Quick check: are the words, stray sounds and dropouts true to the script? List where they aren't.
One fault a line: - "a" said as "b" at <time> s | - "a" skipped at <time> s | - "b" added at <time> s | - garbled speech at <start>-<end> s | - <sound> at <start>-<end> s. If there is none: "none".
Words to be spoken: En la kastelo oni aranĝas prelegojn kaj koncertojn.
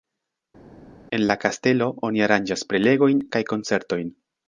none